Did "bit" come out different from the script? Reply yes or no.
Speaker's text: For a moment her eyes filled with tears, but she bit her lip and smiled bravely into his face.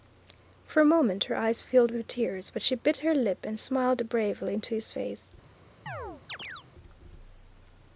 no